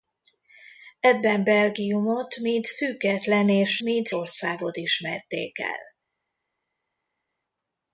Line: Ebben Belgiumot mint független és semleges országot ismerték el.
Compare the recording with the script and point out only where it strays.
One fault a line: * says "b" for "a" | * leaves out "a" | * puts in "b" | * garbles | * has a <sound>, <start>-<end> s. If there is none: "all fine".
* says "mint" for "semleges"